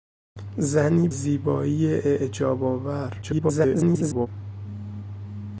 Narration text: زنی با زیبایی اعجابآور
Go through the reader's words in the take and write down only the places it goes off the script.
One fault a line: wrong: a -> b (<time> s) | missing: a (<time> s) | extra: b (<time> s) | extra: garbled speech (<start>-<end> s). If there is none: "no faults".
missing: با (1.1 s)
extra: garbled speech (3.2-4.3 s)